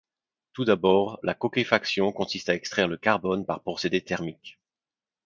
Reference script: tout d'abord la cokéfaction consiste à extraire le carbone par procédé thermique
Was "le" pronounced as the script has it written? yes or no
yes